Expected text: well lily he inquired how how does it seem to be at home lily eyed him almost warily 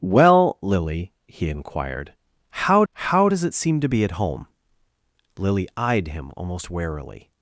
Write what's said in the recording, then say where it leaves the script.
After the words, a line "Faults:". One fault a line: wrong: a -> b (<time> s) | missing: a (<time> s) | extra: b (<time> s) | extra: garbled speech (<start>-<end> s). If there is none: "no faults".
well lily he inquired how how does it seem to be at home lily eyed him almost warily
Faults:
no faults